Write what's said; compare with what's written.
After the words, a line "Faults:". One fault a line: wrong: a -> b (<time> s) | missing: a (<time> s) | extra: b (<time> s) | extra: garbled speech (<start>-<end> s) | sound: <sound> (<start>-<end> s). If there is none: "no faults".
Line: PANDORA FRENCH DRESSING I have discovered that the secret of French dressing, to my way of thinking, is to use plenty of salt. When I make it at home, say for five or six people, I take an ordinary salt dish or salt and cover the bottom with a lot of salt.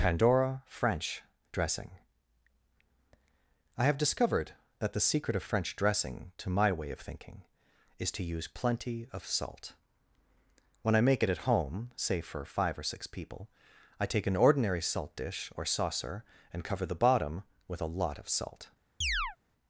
PANDORA FRENCH DRESSING I have discovered that the secret of French dressing, to my way of thinking, is to use plenty of salt. When I make it at home, say for five or six people, I take an ordinary salt dish or saucer and cover the bottom with a lot of salt.
Faults:
wrong: salt -> saucer (15.6 s)
sound: chirp (19.0-19.4 s)